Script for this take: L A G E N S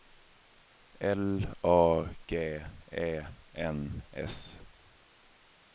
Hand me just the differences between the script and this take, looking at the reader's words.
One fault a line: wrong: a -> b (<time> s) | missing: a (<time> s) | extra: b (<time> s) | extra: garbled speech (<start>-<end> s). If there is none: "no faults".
no faults